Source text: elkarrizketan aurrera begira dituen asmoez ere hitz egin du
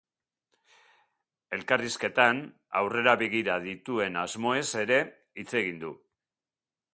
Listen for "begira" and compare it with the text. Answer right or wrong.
right